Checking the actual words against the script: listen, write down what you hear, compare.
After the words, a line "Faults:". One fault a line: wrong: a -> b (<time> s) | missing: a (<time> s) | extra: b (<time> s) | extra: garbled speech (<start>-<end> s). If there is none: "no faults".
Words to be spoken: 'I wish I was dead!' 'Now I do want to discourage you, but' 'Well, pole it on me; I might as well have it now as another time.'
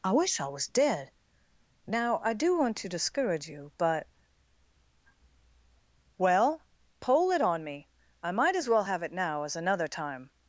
'I wish I was dead!' 'Now I do want to discourage you, but' 'Well, pole it on me; I might as well have it now as another time.'
Faults:
no faults